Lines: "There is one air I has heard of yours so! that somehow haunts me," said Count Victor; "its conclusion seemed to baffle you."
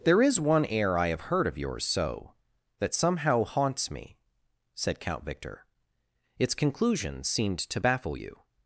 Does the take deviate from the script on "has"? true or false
true